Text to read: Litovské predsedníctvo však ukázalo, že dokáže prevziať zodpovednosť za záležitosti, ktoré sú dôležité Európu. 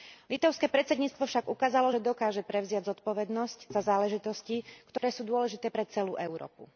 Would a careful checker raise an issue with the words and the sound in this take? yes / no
yes